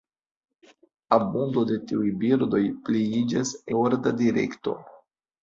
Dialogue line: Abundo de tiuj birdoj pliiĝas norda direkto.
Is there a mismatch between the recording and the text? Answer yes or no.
no